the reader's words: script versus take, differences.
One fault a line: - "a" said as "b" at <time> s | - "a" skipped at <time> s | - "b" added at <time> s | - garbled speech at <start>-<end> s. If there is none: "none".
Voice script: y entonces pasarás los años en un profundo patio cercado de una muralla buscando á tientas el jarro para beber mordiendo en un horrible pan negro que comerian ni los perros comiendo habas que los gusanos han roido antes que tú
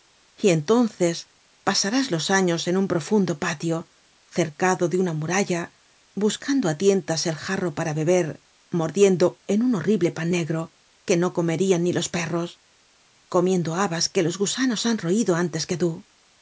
- "no" added at 11.2 s